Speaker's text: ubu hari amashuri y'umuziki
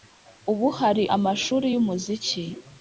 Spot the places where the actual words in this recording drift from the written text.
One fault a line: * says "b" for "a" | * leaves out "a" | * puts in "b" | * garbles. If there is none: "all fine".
all fine